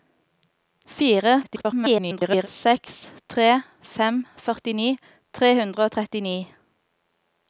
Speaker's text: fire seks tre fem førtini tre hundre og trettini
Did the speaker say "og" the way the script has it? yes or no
yes